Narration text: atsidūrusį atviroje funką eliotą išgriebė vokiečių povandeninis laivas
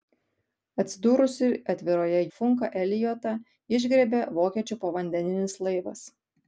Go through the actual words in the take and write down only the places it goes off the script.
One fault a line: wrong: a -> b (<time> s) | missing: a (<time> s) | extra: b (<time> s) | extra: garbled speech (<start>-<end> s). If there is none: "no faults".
no faults